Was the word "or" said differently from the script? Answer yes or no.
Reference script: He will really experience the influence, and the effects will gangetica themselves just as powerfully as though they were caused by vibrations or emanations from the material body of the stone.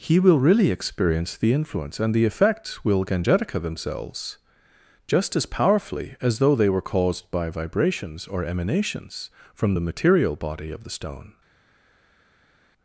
no